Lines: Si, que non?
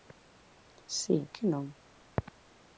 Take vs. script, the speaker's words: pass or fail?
pass